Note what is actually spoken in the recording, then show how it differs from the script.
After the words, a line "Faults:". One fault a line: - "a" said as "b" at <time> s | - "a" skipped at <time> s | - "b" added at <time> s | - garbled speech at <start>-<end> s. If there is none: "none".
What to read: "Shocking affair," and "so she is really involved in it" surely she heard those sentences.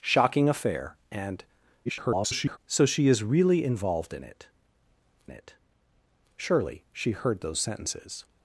"Shocking affair," and [garbled] "so she is really involved in it it" surely she heard those sentences.
Faults:
- garbled speech at 1.9-2.6 s
- "it" added at 5.3 s